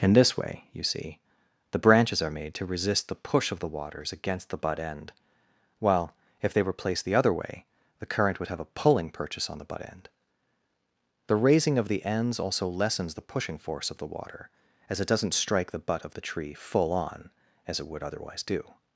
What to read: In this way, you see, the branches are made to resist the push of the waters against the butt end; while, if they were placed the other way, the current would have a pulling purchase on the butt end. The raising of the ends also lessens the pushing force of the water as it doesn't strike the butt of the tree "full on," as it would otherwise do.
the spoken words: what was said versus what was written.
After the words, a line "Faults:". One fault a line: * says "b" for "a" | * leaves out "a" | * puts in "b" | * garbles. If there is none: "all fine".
In this way, you see, the branches are made to resist the push of the waters against the butt end; while, if they were placed the other way, the current would have a pulling purchase on the butt end. The raising of the ends also lessens the pushing force of the water as it doesn't strike the butt of the tree "full on," as it would otherwise do.
Faults:
all fine